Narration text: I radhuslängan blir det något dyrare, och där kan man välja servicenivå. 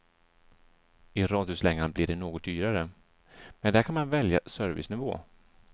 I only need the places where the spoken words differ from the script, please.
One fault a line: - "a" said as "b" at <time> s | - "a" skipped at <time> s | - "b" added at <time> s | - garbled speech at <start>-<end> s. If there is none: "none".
- "och" said as "men" at 3.6 s